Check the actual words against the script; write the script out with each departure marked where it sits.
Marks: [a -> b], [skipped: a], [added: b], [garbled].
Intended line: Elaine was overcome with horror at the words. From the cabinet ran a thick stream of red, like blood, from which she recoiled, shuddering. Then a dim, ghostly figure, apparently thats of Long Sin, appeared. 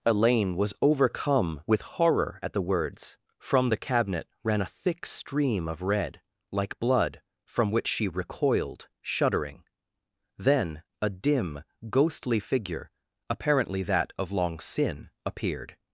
Elaine was overcome with horror at the words. From the cabinet ran a thick stream of red, like blood, from which she recoiled, shuddering. Then a dim, ghostly figure, apparently [thats -> that] of Long Sin, appeared.